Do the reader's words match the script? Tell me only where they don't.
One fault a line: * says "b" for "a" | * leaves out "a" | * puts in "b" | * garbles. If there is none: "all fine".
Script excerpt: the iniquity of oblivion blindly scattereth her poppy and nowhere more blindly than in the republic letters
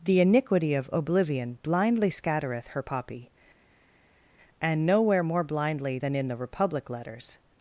all fine